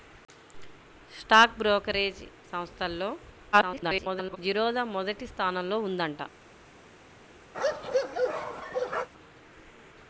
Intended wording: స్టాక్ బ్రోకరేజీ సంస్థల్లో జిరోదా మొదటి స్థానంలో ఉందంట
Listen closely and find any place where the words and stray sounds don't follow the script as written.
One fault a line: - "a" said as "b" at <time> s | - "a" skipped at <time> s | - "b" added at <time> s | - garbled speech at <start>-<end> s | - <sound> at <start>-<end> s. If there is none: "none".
- garbled speech at 3.5-4.4 s
- bark at 7.5-9.1 s